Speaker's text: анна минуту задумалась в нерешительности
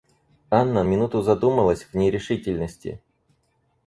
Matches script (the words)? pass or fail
pass